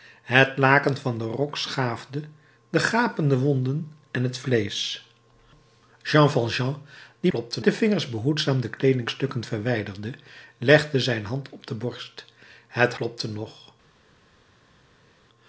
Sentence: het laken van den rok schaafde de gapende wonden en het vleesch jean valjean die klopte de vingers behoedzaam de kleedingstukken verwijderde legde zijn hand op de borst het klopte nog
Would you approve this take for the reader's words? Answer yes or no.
yes